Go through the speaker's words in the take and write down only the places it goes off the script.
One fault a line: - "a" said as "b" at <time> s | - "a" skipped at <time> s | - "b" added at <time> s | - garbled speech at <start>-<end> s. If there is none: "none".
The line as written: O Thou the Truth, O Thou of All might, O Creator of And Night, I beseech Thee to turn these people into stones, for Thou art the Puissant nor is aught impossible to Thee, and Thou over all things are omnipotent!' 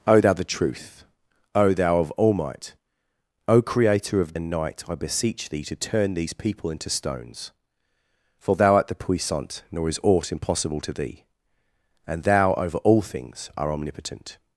none